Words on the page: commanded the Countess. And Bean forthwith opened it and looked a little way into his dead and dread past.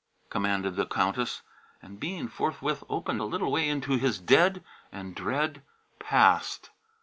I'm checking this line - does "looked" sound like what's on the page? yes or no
no